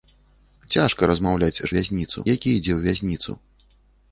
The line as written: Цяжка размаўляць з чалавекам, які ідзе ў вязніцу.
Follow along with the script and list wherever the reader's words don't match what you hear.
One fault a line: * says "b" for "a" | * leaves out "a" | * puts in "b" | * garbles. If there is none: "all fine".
* says "вязніцу" for "чалавекам"